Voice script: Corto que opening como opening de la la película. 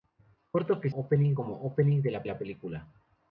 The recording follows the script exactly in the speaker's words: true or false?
true